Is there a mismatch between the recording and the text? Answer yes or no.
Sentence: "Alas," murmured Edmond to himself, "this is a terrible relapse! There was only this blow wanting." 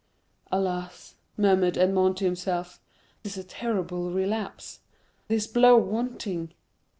yes